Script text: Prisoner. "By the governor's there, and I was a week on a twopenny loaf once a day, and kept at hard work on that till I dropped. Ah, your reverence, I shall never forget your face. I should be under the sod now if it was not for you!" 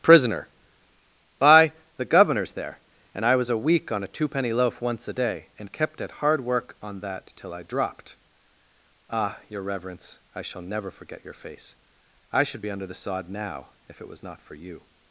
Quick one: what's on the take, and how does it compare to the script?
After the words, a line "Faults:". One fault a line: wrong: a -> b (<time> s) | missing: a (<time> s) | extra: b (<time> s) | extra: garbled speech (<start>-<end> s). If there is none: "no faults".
Prisoner. "By the governor's there, and I was a week on a twopenny loaf once a day, and kept at hard work on that till I dropped. Ah, your reverence, I shall never forget your face. I should be under the sod now if it was not for you!"
Faults:
no faults